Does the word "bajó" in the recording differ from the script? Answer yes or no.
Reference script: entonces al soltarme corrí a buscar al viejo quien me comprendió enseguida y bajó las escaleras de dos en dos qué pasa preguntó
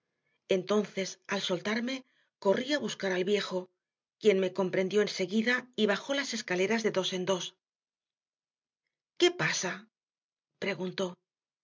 no